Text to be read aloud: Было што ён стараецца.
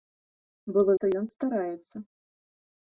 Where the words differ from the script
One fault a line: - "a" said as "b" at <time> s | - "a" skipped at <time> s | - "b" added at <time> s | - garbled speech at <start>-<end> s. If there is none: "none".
none